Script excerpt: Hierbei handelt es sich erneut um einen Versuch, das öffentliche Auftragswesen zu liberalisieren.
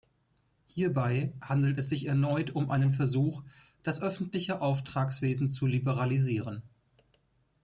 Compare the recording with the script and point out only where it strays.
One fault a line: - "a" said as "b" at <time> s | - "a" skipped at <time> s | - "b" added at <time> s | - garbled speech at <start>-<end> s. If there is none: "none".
none